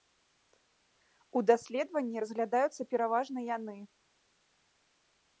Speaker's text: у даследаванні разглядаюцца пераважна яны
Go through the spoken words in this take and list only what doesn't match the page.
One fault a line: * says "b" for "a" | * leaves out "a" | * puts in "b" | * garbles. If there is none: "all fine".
all fine